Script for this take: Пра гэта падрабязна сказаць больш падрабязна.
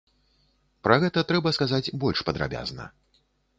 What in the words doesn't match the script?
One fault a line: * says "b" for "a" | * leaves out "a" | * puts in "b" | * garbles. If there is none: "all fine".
* says "трэба" for "падрабязна"